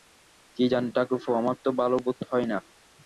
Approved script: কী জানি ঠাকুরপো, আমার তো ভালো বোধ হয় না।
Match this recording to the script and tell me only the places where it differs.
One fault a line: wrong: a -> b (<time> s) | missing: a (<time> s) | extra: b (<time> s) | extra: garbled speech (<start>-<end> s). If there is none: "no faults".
no faults